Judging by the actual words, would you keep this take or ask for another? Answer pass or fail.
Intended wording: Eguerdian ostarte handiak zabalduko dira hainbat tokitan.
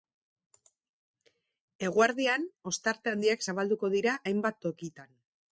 pass